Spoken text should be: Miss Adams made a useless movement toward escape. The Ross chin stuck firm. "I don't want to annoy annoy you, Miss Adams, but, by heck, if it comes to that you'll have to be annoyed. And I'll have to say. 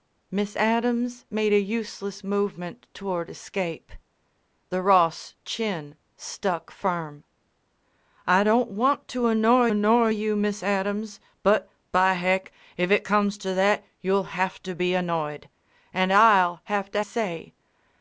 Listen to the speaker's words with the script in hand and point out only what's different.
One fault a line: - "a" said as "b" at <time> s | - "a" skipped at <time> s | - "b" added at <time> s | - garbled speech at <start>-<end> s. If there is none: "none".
none